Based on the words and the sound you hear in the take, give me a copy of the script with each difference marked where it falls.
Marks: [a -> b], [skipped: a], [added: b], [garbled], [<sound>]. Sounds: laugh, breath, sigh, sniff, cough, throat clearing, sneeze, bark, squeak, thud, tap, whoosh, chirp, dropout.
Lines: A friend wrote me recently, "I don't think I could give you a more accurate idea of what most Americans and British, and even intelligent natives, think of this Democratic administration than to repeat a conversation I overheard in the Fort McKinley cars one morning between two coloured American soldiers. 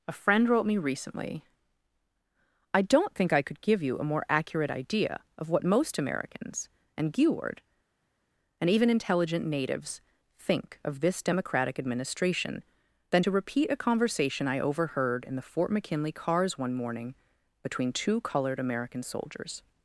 A friend wrote me recently, "I don't think I could give you a more accurate idea of what most Americans and [British, -> Geward] and even intelligent natives, think of this Democratic administration than to repeat a conversation I overheard in the Fort McKinley cars one morning between two coloured American soldiers.